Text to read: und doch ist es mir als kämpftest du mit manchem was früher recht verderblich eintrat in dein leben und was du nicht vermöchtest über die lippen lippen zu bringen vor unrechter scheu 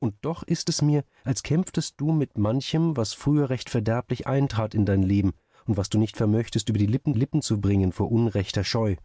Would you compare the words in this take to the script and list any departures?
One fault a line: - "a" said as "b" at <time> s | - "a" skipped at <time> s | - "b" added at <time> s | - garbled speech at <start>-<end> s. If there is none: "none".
none